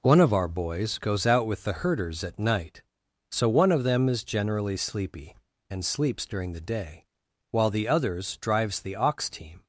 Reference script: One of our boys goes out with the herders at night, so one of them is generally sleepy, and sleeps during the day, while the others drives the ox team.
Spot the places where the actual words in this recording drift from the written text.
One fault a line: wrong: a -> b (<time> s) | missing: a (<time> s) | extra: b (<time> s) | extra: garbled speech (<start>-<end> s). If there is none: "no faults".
no faults